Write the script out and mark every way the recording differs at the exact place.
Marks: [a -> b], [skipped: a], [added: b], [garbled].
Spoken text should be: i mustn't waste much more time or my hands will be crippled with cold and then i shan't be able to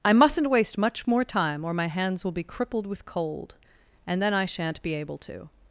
i mustn't waste much more time or my hands will be crippled with cold and then i shan't be able to